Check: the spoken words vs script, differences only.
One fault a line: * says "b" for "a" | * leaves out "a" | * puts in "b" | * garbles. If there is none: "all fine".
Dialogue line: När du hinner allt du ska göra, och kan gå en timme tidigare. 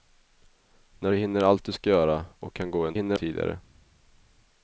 * says "hinner" for "timme"